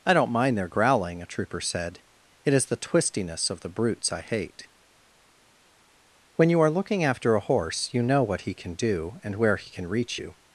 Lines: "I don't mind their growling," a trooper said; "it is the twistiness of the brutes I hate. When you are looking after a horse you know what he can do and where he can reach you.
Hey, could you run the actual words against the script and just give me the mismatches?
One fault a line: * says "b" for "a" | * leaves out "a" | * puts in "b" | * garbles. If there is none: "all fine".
all fine